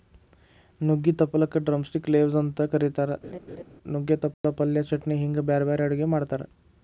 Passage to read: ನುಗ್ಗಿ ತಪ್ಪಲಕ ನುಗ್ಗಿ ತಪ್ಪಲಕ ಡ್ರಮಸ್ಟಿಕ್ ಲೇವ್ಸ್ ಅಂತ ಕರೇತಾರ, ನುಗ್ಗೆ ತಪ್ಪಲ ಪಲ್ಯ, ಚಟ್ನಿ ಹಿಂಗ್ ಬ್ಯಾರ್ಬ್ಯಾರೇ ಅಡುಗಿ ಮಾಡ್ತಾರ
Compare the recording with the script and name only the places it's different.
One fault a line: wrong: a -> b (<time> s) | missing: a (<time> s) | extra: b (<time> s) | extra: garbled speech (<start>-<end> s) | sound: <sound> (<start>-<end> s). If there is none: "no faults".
missing: ನುಗ್ಗಿ ತಪ್ಪಲಕ (1.6 s)
sound: laugh (3.2-3.6 s)
sound: dropout (4.3-4.4 s)